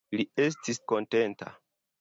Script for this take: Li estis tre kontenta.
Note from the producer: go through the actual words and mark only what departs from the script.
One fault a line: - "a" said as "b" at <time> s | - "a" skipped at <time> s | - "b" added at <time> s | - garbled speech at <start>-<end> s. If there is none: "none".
- "tre" skipped at 0.8 s